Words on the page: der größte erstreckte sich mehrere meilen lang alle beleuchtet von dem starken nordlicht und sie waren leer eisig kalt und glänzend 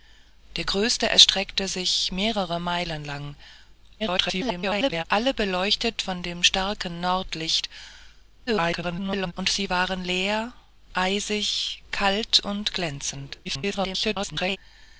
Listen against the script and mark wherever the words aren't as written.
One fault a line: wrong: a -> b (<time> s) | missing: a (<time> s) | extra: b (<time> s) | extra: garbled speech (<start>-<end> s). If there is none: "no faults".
extra: garbled speech (4.0-5.0 s)
extra: garbled speech (8.5-9.3 s)
extra: garbled speech (13.4-14.6 s)